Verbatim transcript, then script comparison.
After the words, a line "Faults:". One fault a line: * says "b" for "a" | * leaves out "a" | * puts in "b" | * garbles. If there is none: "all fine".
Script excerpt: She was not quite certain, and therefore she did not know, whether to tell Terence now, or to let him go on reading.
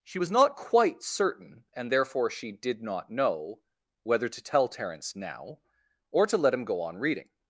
She was not quite certain, and therefore she did not know, whether to tell Terence now, or to let him go on reading.
Faults:
all fine